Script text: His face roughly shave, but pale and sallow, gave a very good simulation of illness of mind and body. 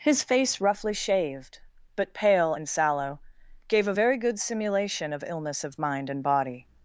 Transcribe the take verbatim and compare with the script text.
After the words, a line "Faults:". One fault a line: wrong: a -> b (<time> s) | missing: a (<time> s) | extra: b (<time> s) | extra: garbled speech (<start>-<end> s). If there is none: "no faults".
His face roughly shaved, but pale and sallow, gave a very good simulation of illness of mind and body.
Faults:
wrong: shave -> shaved (0.9 s)